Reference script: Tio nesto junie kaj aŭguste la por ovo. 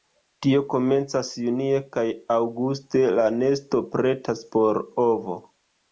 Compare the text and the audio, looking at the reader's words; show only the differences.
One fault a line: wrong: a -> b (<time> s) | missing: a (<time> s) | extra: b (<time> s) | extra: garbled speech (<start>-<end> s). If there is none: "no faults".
wrong: nesto -> komencas (0.7 s)
extra: nesto pretas (3.4 s)